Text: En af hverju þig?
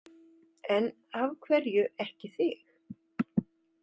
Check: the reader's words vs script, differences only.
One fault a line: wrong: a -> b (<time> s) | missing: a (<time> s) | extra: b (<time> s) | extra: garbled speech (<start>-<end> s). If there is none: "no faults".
extra: ekki (2.0 s)